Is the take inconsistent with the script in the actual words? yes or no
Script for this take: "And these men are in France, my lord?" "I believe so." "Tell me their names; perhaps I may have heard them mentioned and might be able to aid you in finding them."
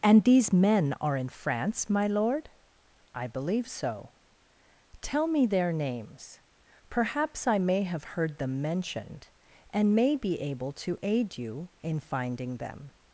yes